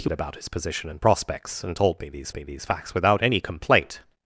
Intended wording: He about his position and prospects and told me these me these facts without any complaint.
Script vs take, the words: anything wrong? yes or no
no